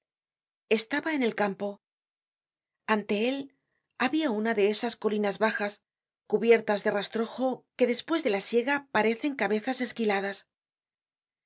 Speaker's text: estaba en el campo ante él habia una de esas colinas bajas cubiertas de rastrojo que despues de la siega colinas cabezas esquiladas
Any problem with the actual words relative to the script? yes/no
yes